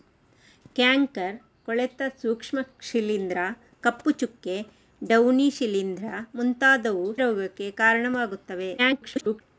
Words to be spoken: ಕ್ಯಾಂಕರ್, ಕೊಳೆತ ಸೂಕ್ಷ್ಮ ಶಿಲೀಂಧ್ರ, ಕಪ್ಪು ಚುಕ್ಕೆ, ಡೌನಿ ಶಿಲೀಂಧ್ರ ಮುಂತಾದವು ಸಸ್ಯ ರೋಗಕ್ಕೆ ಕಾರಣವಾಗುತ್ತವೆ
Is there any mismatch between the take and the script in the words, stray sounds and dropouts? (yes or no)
yes